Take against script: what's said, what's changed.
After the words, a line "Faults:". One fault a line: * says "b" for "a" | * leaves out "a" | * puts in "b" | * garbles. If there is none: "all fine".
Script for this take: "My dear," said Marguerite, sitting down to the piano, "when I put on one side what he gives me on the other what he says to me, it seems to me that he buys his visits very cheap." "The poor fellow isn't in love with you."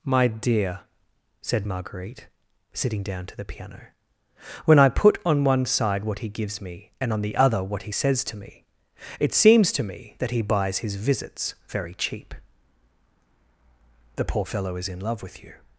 "My dear," said Marguerite, sitting down to the piano, "when I put on one side what he gives me and on the other what he says to me, it seems to me that he buys his visits very cheap." "The poor fellow is in love with you."
Faults:
* puts in "and"
* says "is" for "isn't"